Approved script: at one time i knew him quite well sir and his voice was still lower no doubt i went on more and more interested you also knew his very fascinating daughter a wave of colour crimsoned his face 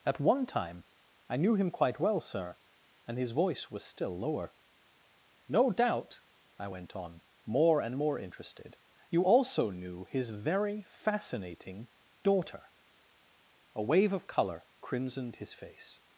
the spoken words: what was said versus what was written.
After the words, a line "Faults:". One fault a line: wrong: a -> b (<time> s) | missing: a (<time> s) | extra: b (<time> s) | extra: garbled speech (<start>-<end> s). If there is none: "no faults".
at one time i knew him quite well sir and his voice was still lower no doubt i went on more and more interested you also knew his very fascinating daughter a wave of colour crimsoned his face
Faults:
no faults